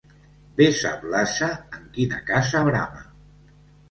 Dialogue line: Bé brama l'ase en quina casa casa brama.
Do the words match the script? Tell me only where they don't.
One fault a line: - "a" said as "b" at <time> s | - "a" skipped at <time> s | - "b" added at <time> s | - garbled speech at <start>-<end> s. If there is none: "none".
- "brama" said as "sap" at 0.8 s
- "casa" skipped at 2.6 s